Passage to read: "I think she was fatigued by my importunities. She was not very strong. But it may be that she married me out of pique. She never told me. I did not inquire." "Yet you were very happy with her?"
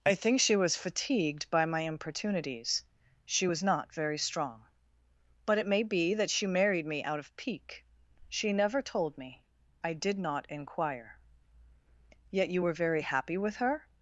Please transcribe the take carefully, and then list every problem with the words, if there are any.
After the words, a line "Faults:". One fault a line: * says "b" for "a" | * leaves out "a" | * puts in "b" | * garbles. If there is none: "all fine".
"I think she was fatigued by my importunities. She was not very strong. But it may be that she married me out of pique. She never told me. I did not inquire." "Yet you were very happy with her?"
Faults:
all fine